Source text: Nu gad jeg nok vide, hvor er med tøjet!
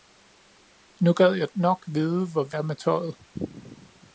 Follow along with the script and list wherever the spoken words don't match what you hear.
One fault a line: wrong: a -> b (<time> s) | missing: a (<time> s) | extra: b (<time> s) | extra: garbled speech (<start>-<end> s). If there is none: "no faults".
no faults